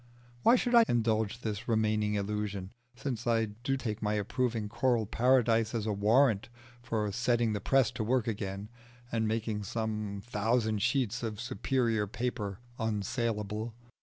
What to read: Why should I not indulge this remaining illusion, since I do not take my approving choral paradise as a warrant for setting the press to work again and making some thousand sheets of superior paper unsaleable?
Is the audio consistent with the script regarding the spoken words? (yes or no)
no